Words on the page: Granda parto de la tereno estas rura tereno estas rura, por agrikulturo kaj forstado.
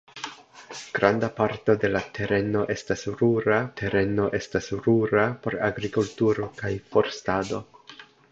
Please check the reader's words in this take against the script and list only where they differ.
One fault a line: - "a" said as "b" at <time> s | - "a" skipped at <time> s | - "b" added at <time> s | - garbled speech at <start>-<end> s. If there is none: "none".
none